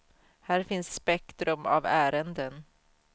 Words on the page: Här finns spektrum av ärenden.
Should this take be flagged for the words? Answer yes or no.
no